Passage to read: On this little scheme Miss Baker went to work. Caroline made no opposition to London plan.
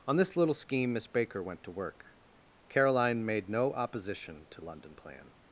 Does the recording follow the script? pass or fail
pass